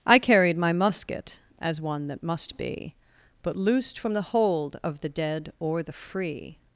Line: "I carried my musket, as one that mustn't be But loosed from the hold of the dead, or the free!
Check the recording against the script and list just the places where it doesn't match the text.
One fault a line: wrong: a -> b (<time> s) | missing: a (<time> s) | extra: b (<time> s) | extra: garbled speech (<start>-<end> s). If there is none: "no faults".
wrong: mustn't -> must (2.2 s)